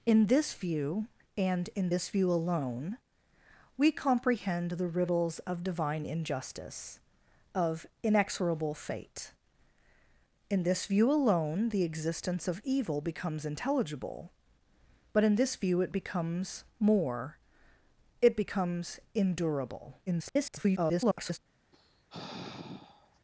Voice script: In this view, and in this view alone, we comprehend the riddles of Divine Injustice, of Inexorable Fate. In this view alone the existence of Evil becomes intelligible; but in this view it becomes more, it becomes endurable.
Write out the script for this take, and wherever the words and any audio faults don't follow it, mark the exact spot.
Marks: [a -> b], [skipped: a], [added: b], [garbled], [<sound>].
In this view, and in this view alone, we comprehend the riddles of Divine Injustice, of Inexorable Fate. In this view alone the existence of Evil becomes intelligible; but in this view it becomes more, it becomes endurable. [garbled] [sigh]